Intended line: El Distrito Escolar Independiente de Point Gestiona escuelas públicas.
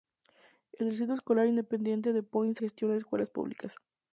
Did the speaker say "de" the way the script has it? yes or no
yes